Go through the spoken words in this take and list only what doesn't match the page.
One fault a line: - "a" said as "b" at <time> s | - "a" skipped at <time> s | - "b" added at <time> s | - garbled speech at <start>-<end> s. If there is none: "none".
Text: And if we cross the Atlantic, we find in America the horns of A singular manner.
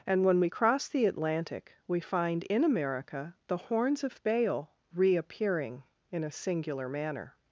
- "if" said as "when" at 0.2 s
- "Baal reappearing in" added at 4.2 s